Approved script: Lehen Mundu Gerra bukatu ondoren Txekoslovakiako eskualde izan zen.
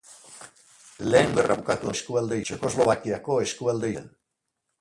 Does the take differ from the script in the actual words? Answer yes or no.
yes